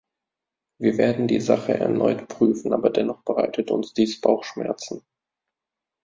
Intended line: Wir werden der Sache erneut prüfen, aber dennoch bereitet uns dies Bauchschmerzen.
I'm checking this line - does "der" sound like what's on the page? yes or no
no